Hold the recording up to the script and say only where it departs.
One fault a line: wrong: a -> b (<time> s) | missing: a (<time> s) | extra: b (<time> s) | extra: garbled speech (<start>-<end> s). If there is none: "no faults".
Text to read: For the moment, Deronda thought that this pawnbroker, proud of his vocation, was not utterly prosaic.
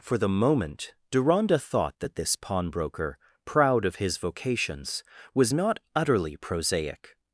wrong: vocation -> vocations (4.2 s)